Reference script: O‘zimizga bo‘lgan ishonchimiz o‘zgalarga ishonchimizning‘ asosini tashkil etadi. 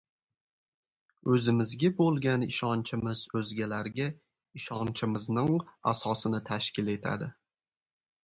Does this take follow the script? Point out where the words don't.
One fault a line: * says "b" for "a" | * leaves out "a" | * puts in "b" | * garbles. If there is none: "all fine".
all fine